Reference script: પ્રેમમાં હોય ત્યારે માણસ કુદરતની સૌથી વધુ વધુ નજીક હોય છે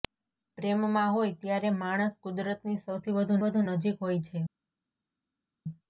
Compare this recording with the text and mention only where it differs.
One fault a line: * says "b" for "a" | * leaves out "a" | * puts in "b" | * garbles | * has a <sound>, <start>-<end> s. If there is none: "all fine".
all fine